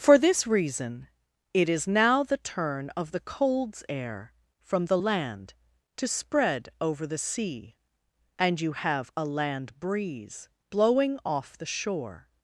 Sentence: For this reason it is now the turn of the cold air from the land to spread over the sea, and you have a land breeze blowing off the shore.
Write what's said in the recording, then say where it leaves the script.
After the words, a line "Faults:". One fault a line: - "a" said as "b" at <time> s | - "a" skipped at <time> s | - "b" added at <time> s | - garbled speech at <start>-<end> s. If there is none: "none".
For this reason it is now the turn of the colds air from the land to spread over the sea, and you have a land breeze blowing off the shore.
Faults:
- "cold" said as "colds" at 3.2 s